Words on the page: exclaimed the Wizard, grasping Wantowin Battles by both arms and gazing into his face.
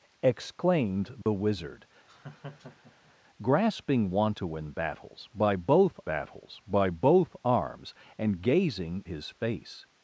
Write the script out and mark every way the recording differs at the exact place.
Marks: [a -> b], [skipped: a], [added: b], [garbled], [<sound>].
exclaimed the [dropout] Wizard, [laugh] grasping Wantowin Battles by both [added: Battles by both] arms and gazing [skipped: into] his face.